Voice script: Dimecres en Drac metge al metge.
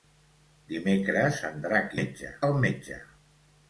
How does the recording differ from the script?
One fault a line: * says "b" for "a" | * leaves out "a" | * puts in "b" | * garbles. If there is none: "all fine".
all fine